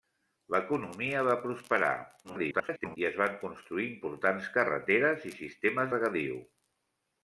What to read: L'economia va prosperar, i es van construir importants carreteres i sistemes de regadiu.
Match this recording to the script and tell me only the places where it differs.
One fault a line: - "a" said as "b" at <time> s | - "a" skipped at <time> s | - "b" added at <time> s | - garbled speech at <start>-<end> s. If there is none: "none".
- garbled speech at 2.2-3.0 s
- "de" skipped at 5.9 s